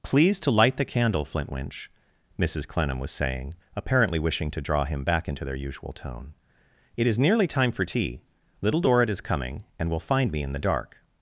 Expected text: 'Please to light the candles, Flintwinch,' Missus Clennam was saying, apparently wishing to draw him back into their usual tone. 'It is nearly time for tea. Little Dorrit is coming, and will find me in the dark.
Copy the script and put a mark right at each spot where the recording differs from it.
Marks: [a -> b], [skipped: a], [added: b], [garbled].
'Please to light the [candles, -> candle] Flintwinch,' Missus Clennam was saying, apparently wishing to draw him back into their usual tone. 'It is nearly time for tea. Little Dorrit is coming, and will find me in the dark.